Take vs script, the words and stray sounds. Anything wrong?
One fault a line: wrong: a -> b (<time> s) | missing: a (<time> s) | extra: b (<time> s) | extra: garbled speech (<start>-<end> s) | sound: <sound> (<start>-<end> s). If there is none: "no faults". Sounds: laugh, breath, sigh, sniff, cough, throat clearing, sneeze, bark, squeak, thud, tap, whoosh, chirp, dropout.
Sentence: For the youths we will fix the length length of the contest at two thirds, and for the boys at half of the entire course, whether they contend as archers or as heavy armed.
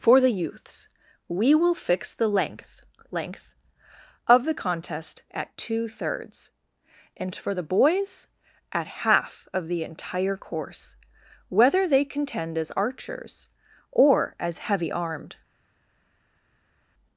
no faults